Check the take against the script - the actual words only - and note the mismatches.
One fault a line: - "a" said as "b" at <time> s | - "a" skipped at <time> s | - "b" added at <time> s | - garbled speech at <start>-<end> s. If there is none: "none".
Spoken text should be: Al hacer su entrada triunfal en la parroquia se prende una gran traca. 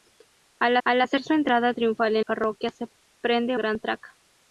- "al" added at 0.8 s
- "la" skipped at 2.2 s
- "una" skipped at 3.6 s